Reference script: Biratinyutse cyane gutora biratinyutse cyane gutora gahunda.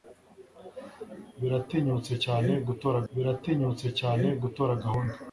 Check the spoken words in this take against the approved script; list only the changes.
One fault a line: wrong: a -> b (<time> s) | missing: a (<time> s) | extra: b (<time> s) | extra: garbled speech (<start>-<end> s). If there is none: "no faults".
no faults